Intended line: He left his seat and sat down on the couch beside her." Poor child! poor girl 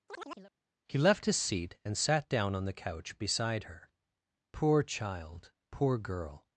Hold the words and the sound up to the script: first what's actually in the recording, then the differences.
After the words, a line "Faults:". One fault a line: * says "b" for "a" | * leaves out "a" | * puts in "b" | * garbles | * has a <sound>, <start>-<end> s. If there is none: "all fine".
He left his seat and sat down on the couch beside her." Poor child! poor girl
Faults:
* has a chirp, 0.1-0.5 s